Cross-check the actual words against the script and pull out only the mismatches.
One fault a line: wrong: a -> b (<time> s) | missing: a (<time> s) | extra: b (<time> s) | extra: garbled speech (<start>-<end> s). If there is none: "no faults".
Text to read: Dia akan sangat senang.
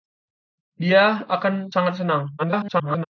extra: garbled speech (2.4-3.0 s)